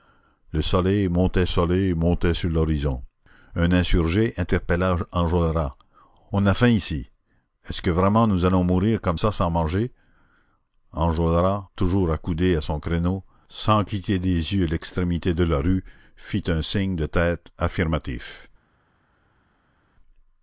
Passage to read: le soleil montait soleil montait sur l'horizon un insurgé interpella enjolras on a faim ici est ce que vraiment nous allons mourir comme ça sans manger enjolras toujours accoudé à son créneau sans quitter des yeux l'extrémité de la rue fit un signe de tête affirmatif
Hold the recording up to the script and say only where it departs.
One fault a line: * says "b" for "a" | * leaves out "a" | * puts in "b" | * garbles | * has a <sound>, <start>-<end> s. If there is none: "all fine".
all fine